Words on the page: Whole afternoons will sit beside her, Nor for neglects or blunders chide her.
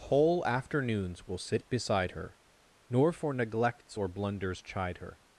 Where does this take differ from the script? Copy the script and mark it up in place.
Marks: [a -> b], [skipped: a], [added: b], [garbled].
Whole afternoons will sit beside her, Nor for neglects or blunders chide her.